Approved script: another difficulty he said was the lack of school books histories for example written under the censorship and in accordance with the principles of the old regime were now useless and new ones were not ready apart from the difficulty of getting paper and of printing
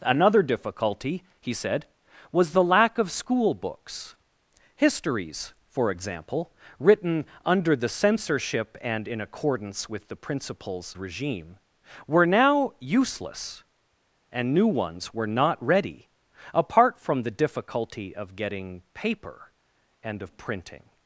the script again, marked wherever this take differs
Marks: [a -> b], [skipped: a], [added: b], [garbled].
another difficulty he said was the lack of school books histories for example written under the censorship and in accordance with the principles [skipped: of the old] regime were now useless and new ones were not ready apart from the difficulty of getting paper and of printing